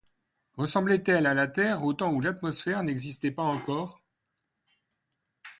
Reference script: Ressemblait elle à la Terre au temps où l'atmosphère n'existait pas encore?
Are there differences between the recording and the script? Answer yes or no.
no